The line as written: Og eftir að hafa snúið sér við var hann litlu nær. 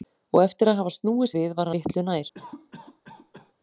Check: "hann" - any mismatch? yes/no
yes